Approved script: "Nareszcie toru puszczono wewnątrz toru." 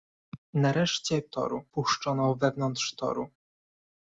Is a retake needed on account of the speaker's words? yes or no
no